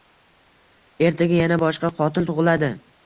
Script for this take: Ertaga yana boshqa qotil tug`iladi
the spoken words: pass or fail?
pass